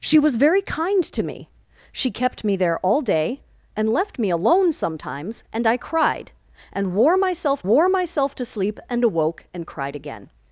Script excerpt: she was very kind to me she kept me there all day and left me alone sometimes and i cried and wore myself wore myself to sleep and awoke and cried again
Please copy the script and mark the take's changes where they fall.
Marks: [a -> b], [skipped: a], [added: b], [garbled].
she was very kind to me she kept me there all day and left me alone sometimes and i cried and wore myself wore myself to sleep and awoke and cried again